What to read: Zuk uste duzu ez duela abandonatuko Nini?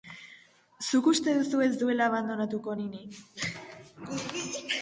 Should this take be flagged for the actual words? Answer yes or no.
no